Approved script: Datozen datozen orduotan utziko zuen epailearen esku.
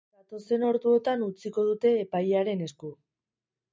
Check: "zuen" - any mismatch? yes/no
yes